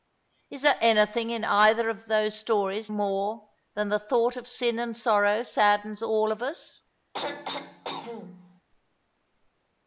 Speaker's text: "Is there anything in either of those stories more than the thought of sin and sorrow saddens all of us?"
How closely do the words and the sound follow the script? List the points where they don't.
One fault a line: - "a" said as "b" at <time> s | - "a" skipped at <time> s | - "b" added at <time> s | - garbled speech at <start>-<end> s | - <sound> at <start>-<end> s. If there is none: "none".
- throat clearing at 7.1-8.6 s